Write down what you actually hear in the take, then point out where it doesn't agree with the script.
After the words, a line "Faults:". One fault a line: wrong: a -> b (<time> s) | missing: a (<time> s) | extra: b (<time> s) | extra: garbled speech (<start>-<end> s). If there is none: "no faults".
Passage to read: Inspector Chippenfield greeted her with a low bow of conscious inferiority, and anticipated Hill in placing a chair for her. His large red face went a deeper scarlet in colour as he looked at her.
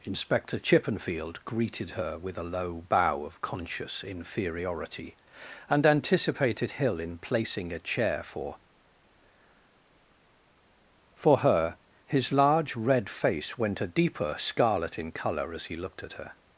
Inspector Chippenfield greeted her with a low bow of conscious inferiority, and anticipated Hill in placing a chair for for her. His large red face went a deeper scarlet in colour as he looked at her.
Faults:
extra: for (11.1 s)